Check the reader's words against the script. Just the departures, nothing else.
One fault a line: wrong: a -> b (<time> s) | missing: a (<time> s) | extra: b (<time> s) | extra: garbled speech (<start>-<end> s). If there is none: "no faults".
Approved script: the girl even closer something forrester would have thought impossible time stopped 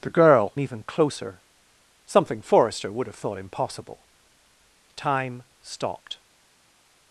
no faults